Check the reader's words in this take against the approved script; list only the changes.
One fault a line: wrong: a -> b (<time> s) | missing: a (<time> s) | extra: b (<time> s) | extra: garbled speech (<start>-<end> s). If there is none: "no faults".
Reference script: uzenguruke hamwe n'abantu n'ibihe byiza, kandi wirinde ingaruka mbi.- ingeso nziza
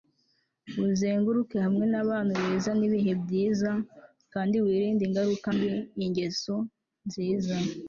extra: beza (2.4 s)